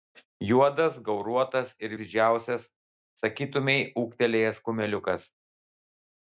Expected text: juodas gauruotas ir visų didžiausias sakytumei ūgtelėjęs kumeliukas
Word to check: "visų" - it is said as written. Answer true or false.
false